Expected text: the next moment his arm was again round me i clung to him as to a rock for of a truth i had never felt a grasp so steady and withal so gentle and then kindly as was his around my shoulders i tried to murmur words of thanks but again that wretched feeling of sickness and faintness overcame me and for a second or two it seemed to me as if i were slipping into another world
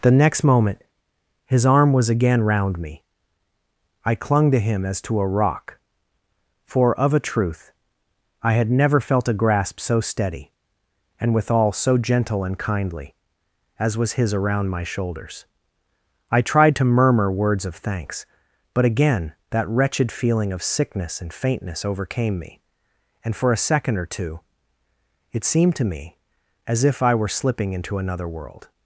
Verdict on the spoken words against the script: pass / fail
fail